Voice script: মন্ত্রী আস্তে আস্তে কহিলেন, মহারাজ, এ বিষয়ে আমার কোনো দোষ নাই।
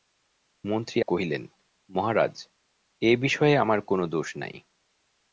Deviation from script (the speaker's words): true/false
true